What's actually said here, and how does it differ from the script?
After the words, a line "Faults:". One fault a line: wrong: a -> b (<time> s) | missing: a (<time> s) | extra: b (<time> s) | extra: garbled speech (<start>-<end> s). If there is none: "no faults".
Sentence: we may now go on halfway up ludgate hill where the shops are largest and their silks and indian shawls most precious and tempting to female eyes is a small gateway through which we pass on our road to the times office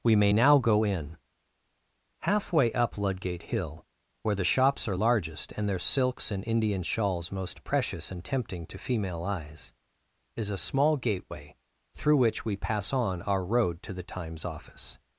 we may now go in halfway up ludgate hill where the shops are largest and their silks and indian shawls most precious and tempting to female eyes is a small gateway through which we pass on our road to the times office
Faults:
wrong: on -> in (0.8 s)